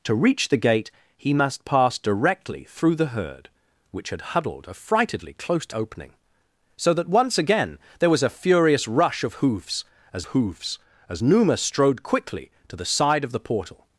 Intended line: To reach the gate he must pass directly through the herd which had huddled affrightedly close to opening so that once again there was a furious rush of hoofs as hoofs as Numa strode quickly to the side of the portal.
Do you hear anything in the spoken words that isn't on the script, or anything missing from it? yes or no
no